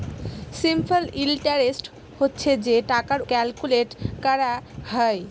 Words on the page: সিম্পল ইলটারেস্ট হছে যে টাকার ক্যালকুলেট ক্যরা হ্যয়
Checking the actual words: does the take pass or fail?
pass